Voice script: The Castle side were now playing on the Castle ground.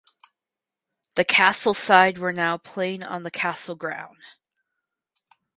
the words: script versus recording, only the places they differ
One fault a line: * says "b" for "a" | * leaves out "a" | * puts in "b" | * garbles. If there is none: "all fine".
all fine